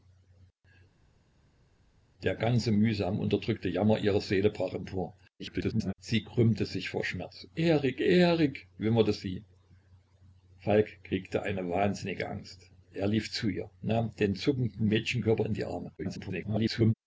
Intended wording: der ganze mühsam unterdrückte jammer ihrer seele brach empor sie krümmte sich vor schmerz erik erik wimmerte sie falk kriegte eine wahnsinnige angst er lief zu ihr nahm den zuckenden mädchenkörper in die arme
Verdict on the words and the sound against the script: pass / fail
fail